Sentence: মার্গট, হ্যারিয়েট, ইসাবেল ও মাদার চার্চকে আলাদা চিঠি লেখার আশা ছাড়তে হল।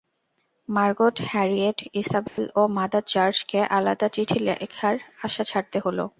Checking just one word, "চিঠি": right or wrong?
right